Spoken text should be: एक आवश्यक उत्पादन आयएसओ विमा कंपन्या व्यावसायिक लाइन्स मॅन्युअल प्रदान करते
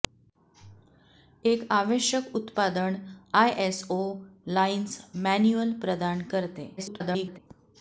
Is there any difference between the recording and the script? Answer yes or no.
yes